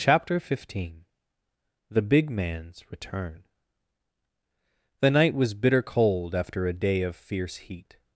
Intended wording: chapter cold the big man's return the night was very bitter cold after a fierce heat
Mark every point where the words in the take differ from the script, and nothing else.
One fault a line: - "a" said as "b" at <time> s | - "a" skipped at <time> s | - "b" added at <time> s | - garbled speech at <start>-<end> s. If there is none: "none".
- "cold" said as "fifteen" at 0.4 s
- "very" skipped at 5.5 s
- "day of" added at 6.7 s